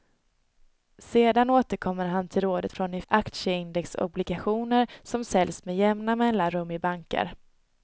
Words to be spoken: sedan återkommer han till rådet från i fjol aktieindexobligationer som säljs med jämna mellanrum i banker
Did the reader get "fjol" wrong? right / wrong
wrong